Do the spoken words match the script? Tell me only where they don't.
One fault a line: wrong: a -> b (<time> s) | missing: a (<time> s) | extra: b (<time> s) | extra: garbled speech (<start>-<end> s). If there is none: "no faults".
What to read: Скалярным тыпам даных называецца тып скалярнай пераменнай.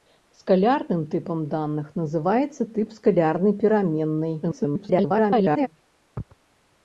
extra: garbled speech (4.4-5.7 s)